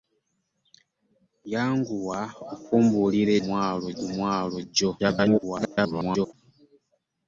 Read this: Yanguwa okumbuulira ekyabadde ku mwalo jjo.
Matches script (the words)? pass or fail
fail